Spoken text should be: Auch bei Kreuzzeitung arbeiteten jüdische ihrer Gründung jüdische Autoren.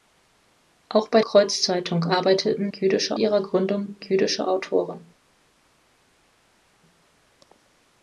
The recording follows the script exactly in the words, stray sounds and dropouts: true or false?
true